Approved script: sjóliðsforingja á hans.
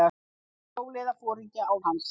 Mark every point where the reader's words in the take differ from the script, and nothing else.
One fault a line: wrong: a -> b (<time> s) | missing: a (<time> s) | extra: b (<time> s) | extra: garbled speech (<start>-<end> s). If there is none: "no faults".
no faults